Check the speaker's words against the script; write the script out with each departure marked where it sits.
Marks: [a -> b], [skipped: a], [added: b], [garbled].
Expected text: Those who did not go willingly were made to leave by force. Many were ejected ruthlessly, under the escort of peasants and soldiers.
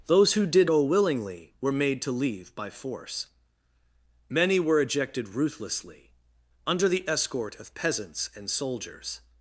Those who did [skipped: not] go willingly were made to leave by force. Many were ejected ruthlessly, under the escort of peasants and soldiers.